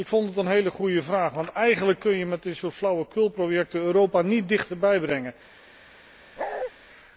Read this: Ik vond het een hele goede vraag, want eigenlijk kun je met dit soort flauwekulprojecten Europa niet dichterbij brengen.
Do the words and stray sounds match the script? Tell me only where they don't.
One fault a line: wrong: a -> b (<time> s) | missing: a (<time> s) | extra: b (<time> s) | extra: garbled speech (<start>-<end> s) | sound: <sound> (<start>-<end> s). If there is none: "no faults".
sound: bark (6.4-6.7 s)